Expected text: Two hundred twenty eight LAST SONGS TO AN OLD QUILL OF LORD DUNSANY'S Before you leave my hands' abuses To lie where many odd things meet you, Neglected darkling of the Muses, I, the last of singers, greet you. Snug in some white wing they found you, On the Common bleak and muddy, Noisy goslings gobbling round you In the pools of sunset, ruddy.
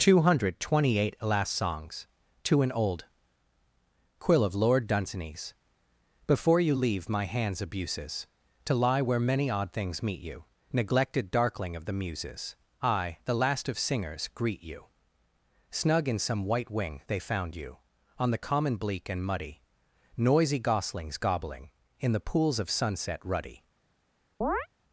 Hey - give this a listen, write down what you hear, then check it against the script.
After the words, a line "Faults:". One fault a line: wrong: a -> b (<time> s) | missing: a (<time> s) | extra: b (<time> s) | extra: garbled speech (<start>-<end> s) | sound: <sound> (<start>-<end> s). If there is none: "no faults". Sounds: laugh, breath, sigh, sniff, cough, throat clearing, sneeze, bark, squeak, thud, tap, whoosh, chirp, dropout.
Two hundred twenty eight LAST SONGS TO AN OLD QUILL OF LORD DUNSANY'S Before you leave my hands' abuses To lie where many odd things meet you, Neglected darkling of the Muses, I, the last of singers, greet you. Snug in some white wing they found you, On the Common bleak and muddy, Noisy goslings gobbling In the pools of sunset, ruddy.
Faults:
missing: round you (21.7 s)
sound: chirp (24.4-24.7 s)